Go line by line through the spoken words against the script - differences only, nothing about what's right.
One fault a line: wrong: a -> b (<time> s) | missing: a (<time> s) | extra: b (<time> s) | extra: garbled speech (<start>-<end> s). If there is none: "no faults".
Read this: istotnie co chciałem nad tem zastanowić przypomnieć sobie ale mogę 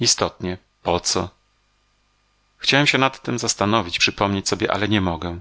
extra: po (0.8 s)
extra: się (2.9 s)
extra: nie (4.9 s)